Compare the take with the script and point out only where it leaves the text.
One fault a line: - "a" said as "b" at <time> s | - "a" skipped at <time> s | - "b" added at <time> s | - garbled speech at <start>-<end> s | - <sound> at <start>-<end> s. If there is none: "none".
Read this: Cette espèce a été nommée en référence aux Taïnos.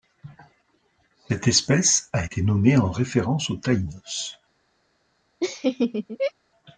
- laugh at 5.4-6.3 s